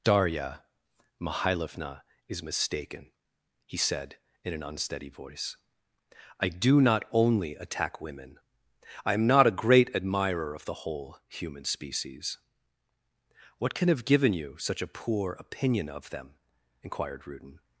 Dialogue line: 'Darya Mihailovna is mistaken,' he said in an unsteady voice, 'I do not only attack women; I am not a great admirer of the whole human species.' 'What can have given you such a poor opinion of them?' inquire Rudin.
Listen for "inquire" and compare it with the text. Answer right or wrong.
wrong